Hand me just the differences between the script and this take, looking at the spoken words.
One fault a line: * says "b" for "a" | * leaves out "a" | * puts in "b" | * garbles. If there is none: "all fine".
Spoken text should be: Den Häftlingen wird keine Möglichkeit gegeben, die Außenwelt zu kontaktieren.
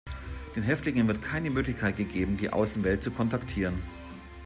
all fine